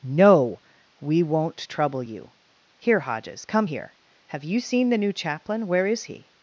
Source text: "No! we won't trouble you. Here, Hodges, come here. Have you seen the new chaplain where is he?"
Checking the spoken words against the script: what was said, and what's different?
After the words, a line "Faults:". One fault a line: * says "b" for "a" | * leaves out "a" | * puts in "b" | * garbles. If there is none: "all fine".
"No! we won't trouble you. Here, Hodges, come here. Have you seen the new chaplain where is he?"
Faults:
all fine